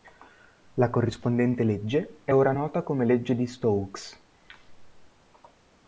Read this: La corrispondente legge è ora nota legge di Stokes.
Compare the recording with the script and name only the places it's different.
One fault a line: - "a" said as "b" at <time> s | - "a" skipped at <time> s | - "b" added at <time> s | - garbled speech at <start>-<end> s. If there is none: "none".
- "come" added at 2.8 s